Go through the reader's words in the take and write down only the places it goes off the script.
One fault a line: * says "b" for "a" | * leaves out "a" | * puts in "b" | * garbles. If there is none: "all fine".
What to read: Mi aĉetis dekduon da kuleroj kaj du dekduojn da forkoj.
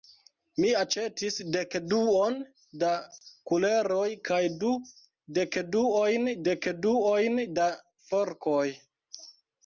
* puts in "dekduojn"